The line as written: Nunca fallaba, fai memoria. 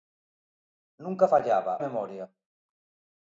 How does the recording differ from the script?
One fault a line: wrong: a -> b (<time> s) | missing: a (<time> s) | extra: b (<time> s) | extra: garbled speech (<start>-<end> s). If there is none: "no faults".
missing: fai (1.7 s)